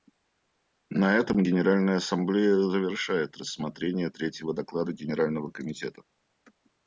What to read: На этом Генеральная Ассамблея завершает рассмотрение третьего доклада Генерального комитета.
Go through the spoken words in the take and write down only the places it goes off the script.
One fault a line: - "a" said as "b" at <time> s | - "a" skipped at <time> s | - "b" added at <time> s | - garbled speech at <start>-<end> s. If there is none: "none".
none